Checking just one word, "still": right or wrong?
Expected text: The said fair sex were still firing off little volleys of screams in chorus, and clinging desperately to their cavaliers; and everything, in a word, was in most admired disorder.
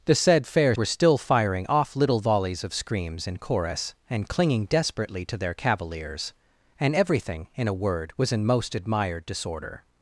right